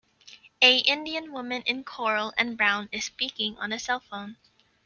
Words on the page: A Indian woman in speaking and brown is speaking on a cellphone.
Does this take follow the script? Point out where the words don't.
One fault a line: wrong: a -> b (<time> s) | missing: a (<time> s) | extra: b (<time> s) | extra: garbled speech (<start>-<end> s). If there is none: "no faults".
wrong: speaking -> coral (1.8 s)